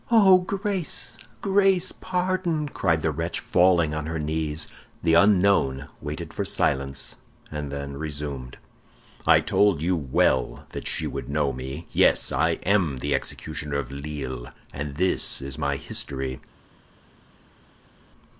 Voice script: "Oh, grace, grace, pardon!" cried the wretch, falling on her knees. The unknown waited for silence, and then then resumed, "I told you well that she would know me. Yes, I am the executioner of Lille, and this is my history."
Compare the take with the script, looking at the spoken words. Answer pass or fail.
fail